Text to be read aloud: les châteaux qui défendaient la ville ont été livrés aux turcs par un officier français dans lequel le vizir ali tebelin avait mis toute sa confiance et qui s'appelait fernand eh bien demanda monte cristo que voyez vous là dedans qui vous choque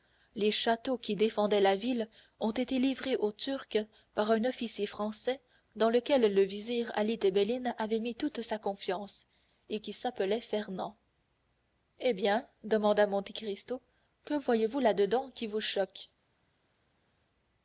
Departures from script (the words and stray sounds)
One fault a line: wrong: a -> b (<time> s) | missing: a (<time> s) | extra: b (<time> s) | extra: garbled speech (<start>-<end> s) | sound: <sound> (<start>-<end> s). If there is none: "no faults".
no faults